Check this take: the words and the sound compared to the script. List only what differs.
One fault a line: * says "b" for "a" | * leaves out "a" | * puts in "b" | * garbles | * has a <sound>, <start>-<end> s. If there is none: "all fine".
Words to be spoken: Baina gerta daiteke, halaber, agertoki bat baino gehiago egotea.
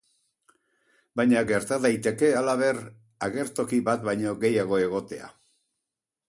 all fine